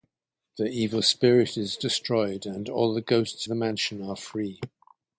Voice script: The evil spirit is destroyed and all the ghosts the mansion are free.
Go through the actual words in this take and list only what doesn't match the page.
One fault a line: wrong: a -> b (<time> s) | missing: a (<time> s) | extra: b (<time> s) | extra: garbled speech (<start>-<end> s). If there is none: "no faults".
no faults